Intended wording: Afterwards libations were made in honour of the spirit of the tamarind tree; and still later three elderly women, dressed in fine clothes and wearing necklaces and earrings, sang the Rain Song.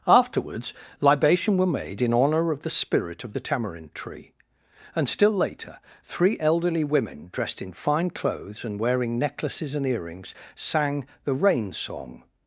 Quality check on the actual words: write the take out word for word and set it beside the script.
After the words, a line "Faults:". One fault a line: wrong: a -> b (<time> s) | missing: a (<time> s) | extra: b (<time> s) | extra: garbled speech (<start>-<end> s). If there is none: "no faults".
Afterwards libation were made in honour of the spirit of the tamarind tree; and still later three elderly women, dressed in fine clothes and wearing necklaces and earrings, sang the Rain Song.
Faults:
wrong: libations -> libation (1.0 s)